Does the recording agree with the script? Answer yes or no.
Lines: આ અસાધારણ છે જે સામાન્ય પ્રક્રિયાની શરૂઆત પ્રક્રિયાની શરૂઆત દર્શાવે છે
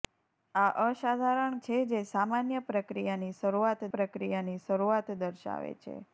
yes